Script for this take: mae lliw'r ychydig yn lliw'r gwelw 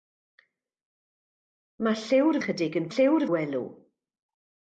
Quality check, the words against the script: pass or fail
pass